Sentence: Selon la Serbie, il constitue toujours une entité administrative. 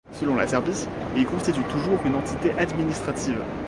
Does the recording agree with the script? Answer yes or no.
yes